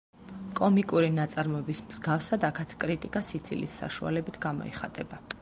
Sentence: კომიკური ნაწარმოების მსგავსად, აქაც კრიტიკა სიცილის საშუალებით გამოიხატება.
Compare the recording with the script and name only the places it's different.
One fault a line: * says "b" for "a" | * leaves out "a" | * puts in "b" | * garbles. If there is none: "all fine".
all fine